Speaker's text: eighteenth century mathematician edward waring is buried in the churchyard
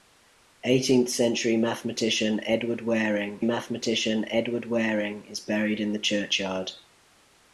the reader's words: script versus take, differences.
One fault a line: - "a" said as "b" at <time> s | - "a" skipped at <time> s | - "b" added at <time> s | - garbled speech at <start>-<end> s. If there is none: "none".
- "mathematician edward waring" added at 3.4 s